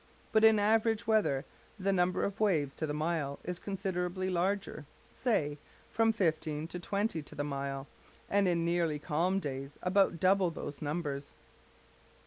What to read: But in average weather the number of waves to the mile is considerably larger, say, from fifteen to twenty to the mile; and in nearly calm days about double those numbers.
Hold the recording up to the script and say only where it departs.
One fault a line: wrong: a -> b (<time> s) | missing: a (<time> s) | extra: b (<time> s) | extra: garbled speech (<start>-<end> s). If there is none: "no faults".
no faults